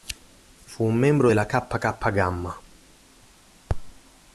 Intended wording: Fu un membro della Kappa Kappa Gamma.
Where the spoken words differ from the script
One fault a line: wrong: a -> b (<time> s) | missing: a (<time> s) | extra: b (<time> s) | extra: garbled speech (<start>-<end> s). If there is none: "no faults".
no faults